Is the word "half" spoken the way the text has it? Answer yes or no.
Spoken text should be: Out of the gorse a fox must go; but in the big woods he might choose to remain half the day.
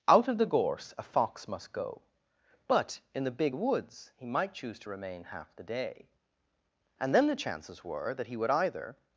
yes